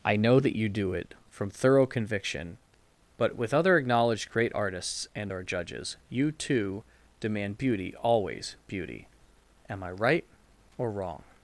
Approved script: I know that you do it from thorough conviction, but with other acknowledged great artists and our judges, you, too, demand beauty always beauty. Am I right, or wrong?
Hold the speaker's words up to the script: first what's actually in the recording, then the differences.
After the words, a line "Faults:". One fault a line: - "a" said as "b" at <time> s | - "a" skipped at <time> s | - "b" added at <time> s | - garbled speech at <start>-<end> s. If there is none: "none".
I know that you do it from thorough conviction, but with other acknowledged great artists and our judges, you, too, demand beauty always beauty. Am I right, or wrong?
Faults:
none